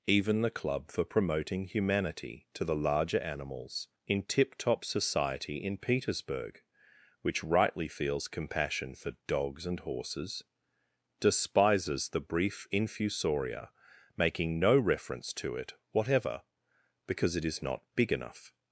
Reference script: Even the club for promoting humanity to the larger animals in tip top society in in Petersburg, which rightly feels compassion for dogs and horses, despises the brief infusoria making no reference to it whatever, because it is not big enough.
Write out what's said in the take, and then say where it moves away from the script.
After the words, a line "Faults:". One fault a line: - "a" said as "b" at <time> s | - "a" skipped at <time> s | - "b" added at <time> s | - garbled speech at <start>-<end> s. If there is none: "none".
Even the club for promoting humanity to the larger animals in tip top society in Petersburg, which rightly feels compassion for dogs and horses, despises the brief infusoria making no reference to it whatever, because it is not big enough.
Faults:
- "in" skipped at 5.8 s